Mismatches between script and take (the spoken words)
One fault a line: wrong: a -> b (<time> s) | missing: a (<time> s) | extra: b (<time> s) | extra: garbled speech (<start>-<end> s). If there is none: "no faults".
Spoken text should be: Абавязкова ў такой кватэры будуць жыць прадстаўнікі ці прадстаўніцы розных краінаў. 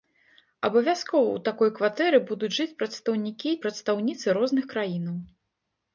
missing: ці (3.5 s)